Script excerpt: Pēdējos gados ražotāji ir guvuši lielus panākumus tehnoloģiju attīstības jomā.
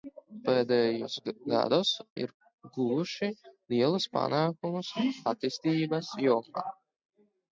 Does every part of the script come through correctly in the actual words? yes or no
no